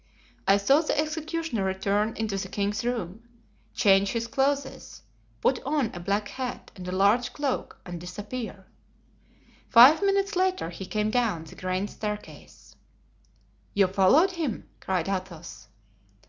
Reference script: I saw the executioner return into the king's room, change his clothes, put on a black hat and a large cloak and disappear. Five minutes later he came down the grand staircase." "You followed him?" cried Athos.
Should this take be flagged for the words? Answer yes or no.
no